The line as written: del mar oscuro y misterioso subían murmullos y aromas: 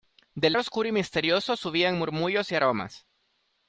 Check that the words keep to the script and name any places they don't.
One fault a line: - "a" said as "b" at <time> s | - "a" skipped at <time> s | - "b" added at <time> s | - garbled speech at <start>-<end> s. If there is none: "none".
- "mar" skipped at 0.6 s